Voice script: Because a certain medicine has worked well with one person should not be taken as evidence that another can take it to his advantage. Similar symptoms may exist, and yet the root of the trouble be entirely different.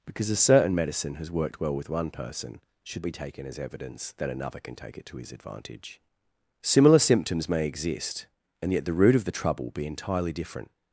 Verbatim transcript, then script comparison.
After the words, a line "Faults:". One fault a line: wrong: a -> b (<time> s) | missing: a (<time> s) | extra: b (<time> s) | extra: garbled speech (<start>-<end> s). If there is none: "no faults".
Because a certain medicine has worked well with one person should be taken as evidence that another can take it to his advantage. Similar symptoms may exist, and yet the root of the trouble be entirely different.
Faults:
missing: not (3.1 s)